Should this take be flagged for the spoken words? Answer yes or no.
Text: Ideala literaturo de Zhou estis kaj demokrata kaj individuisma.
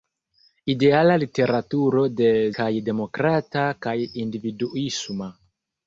yes